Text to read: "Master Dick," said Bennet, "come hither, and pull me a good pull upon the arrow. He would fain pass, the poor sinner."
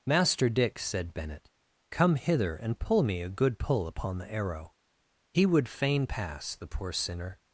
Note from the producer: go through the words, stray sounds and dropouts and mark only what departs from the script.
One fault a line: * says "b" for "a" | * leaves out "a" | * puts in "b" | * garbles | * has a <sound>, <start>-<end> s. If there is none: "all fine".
all fine